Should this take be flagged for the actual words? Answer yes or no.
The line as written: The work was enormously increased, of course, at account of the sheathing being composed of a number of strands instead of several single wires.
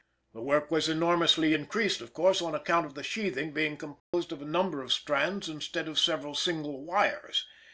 yes